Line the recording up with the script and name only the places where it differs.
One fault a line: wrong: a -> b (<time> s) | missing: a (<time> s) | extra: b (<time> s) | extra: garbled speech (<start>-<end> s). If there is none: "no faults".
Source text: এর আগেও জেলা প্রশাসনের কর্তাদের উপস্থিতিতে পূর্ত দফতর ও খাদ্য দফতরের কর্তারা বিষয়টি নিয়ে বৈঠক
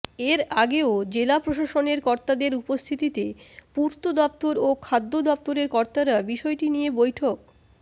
no faults